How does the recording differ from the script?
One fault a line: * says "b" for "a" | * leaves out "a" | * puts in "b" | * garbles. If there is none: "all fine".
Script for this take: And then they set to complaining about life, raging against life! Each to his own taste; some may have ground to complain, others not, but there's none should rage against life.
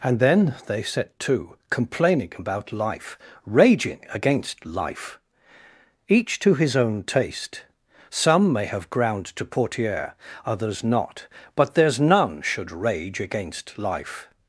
* says "portiere" for "complain"